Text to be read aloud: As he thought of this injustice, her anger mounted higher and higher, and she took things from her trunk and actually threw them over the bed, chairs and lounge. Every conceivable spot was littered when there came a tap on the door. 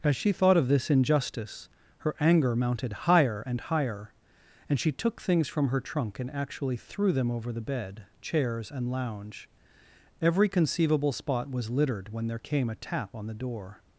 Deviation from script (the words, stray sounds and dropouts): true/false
true